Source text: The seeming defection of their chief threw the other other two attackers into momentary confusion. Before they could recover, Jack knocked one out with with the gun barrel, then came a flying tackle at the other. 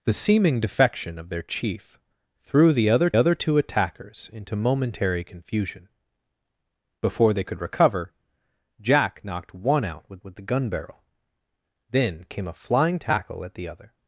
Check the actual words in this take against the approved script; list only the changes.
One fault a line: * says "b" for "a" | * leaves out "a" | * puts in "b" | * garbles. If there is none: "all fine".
all fine